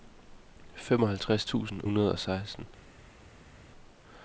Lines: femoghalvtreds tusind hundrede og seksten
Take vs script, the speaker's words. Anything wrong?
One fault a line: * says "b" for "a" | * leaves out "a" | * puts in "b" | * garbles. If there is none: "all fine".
all fine